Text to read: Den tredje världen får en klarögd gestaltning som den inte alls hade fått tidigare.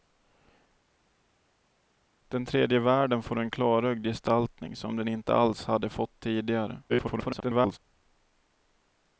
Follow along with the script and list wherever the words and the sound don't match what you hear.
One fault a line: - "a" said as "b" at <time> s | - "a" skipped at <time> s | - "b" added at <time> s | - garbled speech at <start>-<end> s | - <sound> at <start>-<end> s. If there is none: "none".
- garbled speech at 6.9-7.8 s